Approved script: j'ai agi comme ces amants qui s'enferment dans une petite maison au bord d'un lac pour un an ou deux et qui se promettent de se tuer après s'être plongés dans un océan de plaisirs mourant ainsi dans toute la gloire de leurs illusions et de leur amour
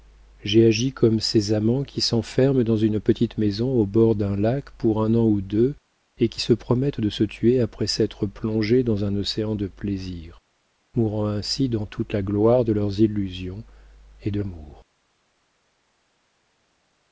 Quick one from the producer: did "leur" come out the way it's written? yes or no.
no